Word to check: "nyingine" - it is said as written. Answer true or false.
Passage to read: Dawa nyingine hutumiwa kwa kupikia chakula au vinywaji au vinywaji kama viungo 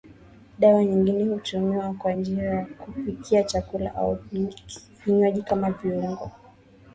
true